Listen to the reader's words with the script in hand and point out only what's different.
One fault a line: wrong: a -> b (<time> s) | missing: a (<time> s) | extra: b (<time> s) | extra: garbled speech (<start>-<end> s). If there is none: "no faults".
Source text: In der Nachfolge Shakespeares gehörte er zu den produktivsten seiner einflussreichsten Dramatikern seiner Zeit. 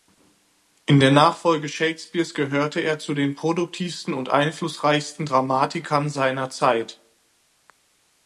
wrong: seiner -> und (4.1 s)